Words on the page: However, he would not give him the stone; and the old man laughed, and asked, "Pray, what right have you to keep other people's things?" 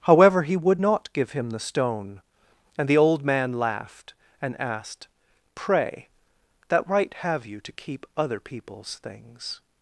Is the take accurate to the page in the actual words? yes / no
no